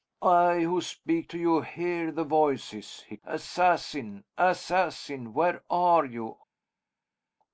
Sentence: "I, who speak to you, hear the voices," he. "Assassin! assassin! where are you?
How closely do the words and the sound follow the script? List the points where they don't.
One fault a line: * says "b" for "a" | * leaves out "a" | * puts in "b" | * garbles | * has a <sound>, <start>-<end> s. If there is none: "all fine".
all fine